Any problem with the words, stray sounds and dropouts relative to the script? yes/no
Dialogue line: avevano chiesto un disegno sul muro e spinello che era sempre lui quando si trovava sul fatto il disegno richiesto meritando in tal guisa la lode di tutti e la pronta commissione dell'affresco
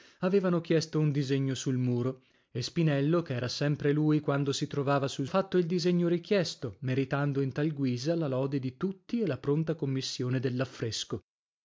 no